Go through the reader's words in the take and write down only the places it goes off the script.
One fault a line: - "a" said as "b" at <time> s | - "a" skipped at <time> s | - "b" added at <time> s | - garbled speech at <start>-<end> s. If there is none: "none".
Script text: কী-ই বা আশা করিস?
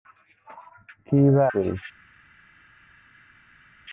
- "আশা" skipped at 1.4 s